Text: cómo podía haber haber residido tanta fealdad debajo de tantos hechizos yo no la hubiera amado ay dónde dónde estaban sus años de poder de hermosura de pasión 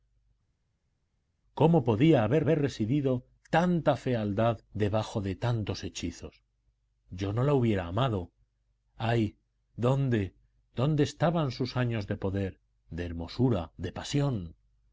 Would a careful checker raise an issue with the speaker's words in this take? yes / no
no